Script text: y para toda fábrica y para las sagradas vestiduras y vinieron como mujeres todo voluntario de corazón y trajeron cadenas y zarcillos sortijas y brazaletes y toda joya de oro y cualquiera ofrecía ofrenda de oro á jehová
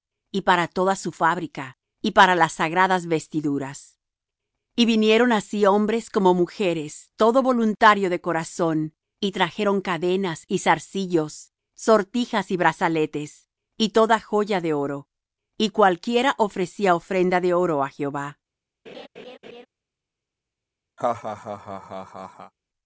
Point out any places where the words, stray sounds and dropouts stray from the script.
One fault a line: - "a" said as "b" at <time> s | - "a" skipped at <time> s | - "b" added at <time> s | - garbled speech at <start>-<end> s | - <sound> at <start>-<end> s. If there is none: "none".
- "su" added at 0.9 s
- "así hombres" added at 5.3 s
- laugh at 18.9-19.7 s
- laugh at 21.0-22.5 s